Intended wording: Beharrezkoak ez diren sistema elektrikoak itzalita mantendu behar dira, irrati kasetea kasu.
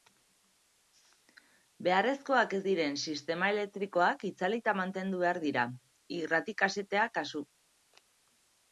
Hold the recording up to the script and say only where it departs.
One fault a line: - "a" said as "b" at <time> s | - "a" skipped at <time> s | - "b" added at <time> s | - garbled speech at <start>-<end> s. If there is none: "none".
none